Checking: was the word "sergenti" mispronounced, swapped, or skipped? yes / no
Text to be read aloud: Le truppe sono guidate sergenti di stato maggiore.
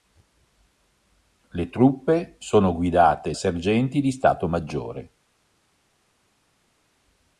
no